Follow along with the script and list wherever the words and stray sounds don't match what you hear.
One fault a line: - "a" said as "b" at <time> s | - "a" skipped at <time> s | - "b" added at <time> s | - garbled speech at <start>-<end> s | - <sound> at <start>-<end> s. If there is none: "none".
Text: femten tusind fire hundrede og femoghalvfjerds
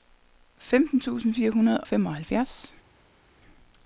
- "og" skipped at 1.8 s